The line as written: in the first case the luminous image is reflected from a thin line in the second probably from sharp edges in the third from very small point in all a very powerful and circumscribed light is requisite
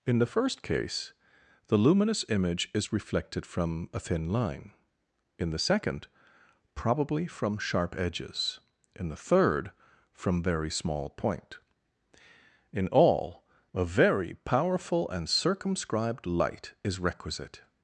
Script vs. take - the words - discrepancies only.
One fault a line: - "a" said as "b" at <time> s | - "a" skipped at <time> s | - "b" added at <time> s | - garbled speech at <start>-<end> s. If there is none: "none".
none